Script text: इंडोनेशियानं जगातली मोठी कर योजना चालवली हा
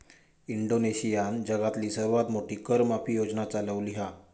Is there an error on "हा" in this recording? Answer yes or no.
no